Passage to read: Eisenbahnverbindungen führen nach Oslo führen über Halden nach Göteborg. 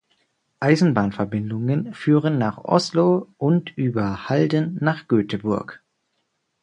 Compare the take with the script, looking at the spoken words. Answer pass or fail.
fail